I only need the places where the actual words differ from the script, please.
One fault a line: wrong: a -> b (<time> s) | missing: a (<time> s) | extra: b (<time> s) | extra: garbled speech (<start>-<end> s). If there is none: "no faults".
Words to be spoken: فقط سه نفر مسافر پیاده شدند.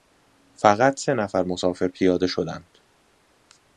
no faults